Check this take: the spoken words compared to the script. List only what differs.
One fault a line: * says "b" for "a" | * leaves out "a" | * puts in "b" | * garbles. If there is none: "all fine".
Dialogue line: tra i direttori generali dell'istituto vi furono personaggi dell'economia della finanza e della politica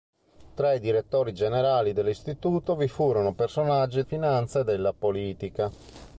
* leaves out "dell'economia della"